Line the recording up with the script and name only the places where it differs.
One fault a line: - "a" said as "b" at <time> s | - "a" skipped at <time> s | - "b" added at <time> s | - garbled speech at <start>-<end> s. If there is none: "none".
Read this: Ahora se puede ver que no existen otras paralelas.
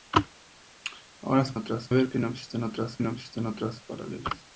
- "puede" said as "otras" at 1.6 s
- "no existen otras" added at 3.0 s